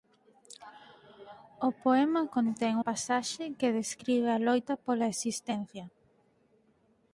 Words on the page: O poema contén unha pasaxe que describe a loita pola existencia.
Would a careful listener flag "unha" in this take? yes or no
yes